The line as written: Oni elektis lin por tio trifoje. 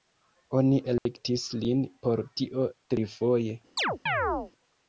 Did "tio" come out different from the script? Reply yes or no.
no